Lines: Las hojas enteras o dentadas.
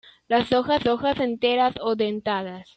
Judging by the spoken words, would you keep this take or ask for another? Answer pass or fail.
fail